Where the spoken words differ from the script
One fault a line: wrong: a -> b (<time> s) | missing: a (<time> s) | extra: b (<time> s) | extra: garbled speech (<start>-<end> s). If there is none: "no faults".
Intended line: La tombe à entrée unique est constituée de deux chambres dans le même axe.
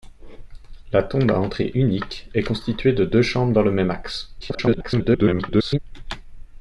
extra: garbled speech (4.4-5.8 s)